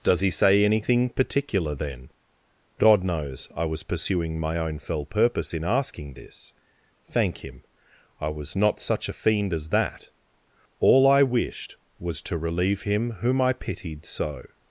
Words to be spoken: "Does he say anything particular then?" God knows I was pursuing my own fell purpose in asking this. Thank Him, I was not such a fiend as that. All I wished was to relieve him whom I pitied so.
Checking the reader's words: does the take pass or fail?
pass